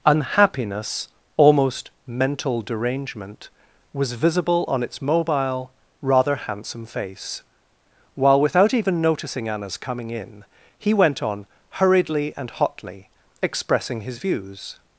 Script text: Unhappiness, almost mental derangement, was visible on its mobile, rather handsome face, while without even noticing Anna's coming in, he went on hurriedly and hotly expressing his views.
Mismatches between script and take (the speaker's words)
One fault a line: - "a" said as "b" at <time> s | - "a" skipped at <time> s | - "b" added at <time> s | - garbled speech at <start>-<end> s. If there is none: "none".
none